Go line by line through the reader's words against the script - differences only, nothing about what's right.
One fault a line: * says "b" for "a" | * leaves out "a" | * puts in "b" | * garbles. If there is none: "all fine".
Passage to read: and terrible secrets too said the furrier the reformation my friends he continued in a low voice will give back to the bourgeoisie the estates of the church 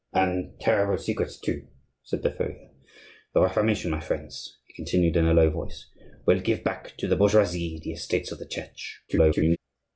* garbles